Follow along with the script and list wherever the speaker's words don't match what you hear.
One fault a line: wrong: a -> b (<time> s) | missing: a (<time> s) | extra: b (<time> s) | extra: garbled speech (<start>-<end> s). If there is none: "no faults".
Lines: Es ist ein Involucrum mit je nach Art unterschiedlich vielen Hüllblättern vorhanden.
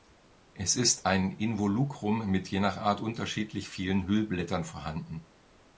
no faults